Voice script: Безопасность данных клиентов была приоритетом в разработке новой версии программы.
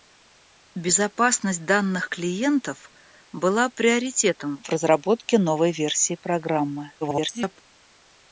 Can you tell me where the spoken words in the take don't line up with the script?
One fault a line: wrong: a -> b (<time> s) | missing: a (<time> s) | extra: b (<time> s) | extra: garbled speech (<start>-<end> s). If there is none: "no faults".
extra: garbled speech (7.0-7.6 s)